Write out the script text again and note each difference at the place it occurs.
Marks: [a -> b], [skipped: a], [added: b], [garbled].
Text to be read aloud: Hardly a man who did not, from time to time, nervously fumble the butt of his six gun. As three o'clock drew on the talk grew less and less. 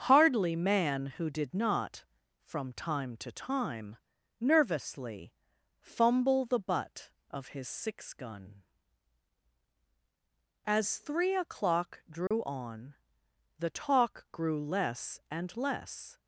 Hardly [skipped: a] man who did not, from time to time, nervously fumble the butt of his six gun. As three o'clock drew on the talk grew less and less.